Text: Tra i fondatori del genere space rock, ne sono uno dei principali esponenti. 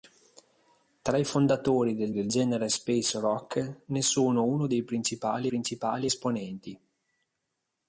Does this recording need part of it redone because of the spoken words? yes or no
yes